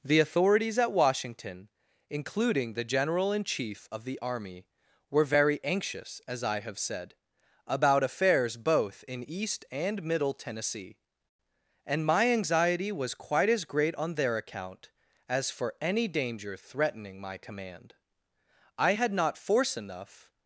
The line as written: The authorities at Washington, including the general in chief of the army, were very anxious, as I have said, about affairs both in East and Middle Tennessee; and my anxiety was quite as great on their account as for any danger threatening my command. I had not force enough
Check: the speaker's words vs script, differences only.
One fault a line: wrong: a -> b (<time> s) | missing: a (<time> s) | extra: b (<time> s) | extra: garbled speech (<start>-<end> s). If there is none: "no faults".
no faults